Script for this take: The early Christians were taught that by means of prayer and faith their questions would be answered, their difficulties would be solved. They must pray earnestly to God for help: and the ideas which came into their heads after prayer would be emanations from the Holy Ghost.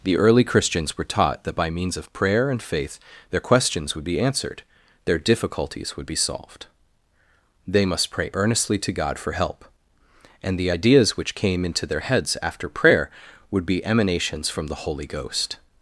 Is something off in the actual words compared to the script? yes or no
no